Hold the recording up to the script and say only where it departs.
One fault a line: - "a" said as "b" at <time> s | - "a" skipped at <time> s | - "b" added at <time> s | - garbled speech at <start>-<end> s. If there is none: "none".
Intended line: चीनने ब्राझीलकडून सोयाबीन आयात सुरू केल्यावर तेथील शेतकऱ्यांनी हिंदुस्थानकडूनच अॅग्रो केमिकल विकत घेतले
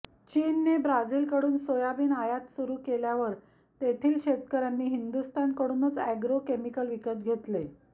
none